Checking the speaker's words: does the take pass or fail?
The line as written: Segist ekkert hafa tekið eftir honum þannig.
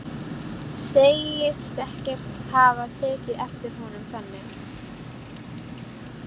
pass